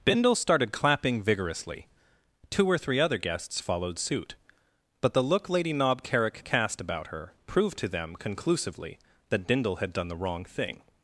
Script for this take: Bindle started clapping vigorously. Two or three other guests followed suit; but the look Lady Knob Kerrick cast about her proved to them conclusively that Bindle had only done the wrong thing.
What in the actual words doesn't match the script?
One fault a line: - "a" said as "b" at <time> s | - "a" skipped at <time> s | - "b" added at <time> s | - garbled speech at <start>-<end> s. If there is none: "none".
- "only" skipped at 9.9 s